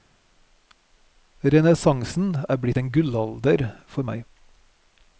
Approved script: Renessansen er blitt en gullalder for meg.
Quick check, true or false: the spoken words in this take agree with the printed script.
true